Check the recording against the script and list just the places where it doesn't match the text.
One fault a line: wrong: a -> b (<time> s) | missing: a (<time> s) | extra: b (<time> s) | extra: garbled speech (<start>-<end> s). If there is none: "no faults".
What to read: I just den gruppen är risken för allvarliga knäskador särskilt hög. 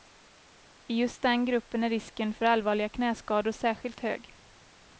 no faults